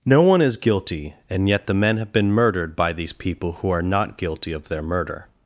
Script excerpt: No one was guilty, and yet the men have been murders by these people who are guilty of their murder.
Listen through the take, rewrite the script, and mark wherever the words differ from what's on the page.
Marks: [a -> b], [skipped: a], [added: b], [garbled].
No one [was -> is] guilty, and yet the men have been [murders -> murdered] by these people who are [added: not] guilty of their murder.